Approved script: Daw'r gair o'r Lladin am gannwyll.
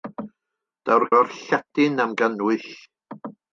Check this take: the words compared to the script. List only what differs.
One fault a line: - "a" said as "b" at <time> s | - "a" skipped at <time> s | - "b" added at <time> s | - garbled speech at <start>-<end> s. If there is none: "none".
- "gair" skipped at 1.1 s